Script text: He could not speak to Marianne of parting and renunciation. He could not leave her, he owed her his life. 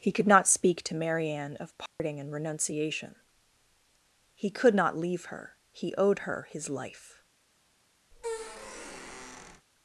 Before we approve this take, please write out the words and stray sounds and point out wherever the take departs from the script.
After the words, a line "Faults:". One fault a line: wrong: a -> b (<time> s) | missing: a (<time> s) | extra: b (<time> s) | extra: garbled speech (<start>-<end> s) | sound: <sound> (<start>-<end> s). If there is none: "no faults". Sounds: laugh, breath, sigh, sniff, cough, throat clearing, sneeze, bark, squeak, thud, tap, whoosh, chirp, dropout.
He could not speak to Marianne of parting and renunciation. He could not leave her, he owed her his life.
Faults:
sound: dropout (1.9-2.0 s)
sound: squeak (8.1-9.7 s)